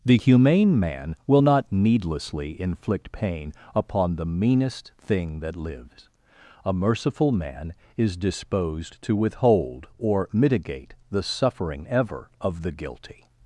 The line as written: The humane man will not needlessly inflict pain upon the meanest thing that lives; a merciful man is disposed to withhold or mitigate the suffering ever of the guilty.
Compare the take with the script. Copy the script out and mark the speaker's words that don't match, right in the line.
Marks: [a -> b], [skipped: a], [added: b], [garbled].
The humane man will not needlessly inflict pain upon the meanest thing that lives; a merciful man is disposed to withhold or mitigate the suffering ever of the guilty.